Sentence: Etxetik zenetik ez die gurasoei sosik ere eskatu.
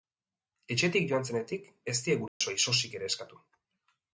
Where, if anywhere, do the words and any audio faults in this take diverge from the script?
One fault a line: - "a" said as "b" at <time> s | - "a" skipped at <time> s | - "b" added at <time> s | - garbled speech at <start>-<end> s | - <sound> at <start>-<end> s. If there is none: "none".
- "joan" added at 1.1 s
- dropout at 2.3-2.4 s